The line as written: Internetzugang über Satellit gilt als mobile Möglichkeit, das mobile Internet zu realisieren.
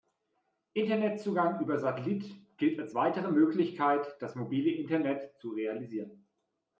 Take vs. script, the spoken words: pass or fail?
fail